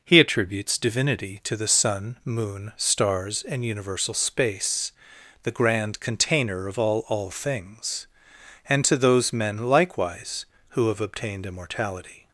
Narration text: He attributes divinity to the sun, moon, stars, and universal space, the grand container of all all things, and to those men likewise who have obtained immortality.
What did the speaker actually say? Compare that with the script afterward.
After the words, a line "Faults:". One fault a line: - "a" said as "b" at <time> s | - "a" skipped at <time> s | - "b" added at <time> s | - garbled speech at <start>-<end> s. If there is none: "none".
He attributes divinity to the sun, moon, stars, and universal space, the grand container of all all things, and to those men likewise who have obtained immortality.
Faults:
none